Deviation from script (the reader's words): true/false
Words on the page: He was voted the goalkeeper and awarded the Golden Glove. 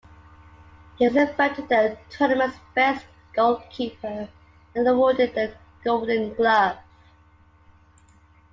true